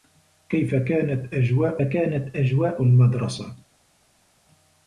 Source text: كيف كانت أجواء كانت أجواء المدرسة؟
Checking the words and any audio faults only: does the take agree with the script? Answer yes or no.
yes